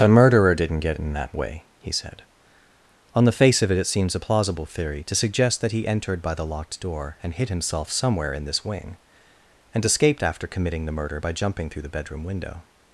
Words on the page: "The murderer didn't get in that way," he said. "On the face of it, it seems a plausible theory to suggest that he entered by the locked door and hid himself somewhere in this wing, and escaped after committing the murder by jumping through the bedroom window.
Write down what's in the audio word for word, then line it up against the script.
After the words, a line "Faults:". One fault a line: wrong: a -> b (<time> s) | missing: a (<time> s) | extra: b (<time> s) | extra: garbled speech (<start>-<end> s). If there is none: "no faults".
"A murderer didn't get in that way," he said. "On the face of it, it seems a plausible theory to suggest that he entered by the locked door and hid himself somewhere in this wing, and escaped after committing the murder by jumping through the bedroom window.
Faults:
wrong: The -> A (0.0 s)